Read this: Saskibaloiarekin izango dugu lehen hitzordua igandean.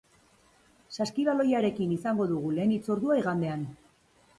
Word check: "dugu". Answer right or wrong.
right